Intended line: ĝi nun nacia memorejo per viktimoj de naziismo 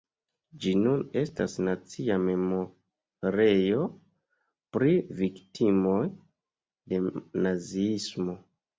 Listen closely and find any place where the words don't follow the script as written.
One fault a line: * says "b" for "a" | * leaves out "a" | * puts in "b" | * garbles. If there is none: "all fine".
* puts in "estas"
* says "pri" for "per"